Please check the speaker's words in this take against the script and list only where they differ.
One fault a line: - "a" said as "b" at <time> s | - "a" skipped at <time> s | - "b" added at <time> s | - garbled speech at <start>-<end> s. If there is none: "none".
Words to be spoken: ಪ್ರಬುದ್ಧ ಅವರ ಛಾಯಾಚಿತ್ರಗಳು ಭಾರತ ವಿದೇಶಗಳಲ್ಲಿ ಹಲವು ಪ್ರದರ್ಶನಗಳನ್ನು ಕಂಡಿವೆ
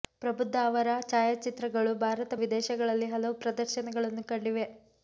none